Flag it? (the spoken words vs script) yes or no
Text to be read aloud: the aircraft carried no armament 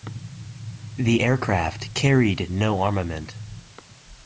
no